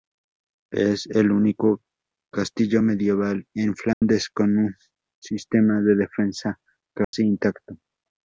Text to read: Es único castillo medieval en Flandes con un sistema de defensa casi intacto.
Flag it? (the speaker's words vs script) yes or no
yes